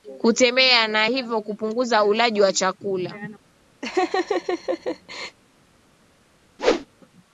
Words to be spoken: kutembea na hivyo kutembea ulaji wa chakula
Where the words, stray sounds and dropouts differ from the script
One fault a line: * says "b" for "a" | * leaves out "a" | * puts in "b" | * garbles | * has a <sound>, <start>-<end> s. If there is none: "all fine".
* says "kupunguza" for "kutembea"
* has a laugh, 3.8-5.4 s
* has a whoosh, 6.6-6.9 s